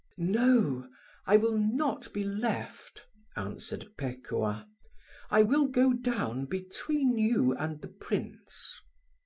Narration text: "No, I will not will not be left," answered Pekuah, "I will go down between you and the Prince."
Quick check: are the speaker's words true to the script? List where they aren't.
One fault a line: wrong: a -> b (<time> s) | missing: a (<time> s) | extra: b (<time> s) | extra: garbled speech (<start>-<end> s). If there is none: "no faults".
missing: will not (2.1 s)